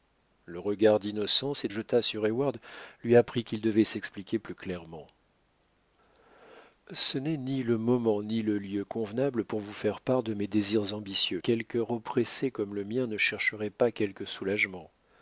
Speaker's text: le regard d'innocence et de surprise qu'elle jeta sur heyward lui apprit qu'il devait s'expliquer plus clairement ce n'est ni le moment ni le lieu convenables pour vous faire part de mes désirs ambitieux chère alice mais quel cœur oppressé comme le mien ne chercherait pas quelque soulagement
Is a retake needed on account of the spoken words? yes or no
yes